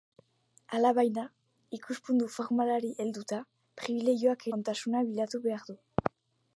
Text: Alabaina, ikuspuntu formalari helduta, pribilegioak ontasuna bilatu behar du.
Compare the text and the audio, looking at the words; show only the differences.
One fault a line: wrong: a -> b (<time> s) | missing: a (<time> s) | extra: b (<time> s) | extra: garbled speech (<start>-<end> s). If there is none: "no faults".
no faults